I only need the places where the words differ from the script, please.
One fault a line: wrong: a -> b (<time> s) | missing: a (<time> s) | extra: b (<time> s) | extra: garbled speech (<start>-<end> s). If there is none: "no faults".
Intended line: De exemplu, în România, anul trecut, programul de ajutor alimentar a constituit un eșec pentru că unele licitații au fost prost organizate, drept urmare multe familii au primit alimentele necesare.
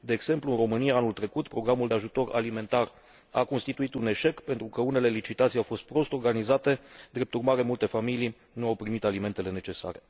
extra: nu (8.5 s)